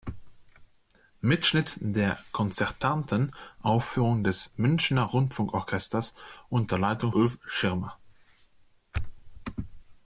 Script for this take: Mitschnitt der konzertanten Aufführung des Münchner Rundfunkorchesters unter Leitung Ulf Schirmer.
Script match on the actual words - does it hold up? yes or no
yes